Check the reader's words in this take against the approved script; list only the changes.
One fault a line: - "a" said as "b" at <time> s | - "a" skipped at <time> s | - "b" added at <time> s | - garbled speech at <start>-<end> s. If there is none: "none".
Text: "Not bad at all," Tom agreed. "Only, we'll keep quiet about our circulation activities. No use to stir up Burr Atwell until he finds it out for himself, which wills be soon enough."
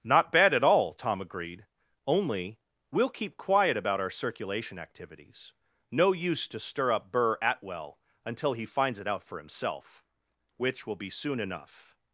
- "wills" said as "will" at 10.9 s